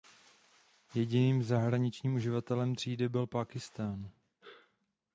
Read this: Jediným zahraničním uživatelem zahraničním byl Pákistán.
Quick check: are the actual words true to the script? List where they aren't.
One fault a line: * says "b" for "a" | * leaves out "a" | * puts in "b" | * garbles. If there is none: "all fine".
* says "třídy" for "zahraničním"